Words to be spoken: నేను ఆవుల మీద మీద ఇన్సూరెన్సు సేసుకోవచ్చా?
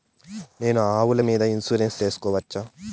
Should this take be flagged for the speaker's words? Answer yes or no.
yes